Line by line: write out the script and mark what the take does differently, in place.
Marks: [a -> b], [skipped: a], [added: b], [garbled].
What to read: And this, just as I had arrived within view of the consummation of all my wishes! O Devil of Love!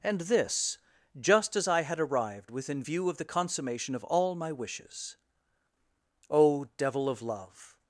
And this, just as I had arrived within view of the consummation of all my wishes! O Devil of Love!